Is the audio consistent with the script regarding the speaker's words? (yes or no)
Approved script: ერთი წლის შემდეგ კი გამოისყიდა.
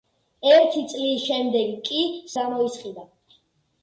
yes